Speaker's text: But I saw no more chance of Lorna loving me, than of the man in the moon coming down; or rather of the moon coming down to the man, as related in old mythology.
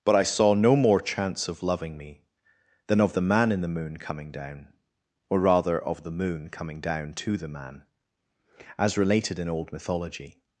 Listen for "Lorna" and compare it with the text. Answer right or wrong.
wrong